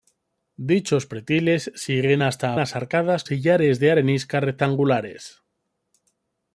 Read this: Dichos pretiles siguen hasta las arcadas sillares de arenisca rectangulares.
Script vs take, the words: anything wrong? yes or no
no